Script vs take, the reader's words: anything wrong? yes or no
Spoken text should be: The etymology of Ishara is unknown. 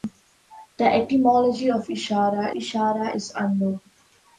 yes